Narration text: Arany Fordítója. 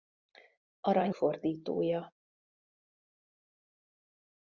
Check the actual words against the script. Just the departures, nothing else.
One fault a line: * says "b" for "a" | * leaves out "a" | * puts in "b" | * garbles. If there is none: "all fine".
all fine